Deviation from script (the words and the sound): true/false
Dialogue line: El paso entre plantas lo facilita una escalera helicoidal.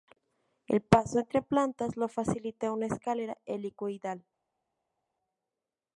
false